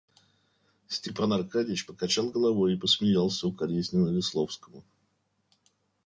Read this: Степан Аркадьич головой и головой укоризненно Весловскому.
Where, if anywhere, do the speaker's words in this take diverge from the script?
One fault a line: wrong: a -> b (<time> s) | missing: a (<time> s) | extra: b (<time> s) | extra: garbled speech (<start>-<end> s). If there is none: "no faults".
extra: покачал (1.8 s)
wrong: головой -> посмеялся (2.8 s)